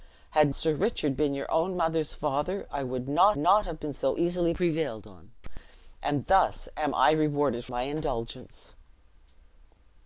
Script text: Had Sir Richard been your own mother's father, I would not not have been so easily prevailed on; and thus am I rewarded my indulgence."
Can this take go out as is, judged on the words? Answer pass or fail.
pass